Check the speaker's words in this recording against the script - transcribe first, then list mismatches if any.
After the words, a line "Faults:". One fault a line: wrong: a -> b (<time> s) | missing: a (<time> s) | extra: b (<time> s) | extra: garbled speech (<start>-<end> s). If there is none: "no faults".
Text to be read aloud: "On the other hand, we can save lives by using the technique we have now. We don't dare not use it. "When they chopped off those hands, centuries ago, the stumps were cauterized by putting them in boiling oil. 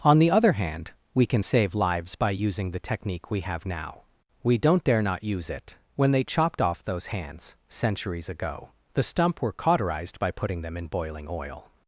"On the other hand, we can save lives by using the technique we have now. We don't dare not use it. "When they chopped off those hands, centuries ago, the stump were cauterized by putting them in boiling oil.
Faults:
wrong: stumps -> stump (9.0 s)